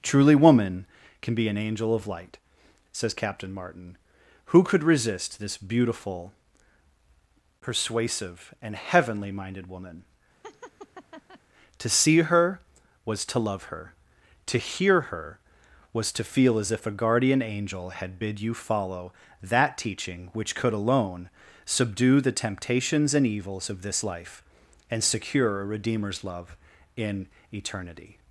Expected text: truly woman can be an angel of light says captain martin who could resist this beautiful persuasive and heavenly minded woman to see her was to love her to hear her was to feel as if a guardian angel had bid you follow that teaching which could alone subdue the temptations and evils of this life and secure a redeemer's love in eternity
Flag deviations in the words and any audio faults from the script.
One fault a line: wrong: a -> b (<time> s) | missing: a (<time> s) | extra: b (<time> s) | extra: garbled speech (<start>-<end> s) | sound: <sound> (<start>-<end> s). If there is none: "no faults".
sound: laugh (10.4-11.4 s)